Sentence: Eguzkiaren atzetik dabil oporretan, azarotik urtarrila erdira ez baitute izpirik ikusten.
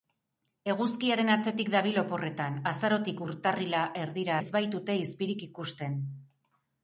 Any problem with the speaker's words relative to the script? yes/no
no